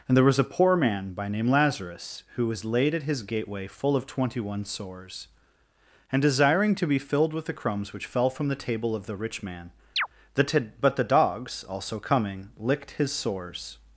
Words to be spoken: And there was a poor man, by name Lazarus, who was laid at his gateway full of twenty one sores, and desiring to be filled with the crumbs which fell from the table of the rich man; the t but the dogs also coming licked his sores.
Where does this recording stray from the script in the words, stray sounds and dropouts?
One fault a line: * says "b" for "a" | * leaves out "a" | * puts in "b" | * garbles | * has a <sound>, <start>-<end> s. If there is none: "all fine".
* has a chirp, 10.0-10.1 s